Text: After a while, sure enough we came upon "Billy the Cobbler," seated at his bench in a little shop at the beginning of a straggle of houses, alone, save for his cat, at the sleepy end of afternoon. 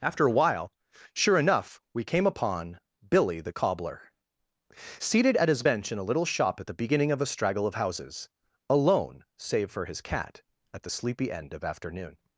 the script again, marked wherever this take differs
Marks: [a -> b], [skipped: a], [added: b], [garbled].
After a while, sure enough we came upon "Billy the Cobbler," seated at his bench in a little shop at the beginning of a straggle of houses, alone, save for his cat, at the sleepy end of afternoon.